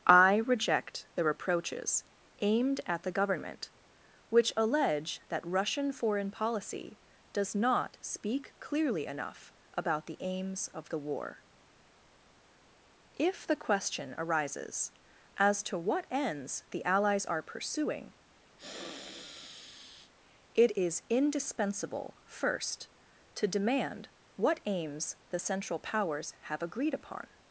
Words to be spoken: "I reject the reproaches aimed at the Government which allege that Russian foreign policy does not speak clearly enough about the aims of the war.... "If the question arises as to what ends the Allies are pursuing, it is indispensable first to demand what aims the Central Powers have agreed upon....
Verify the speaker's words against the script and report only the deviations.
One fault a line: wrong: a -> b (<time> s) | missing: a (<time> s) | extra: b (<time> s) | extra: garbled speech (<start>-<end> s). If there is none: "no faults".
no faults